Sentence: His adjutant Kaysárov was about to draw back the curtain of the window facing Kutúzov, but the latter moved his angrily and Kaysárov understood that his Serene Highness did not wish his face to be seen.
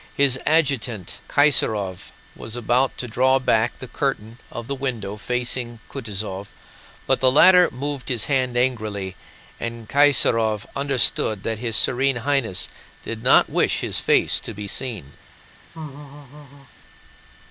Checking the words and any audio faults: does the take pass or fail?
fail